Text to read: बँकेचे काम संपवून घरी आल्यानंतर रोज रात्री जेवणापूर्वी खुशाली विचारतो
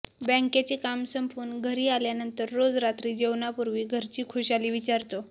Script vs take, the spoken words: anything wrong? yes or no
yes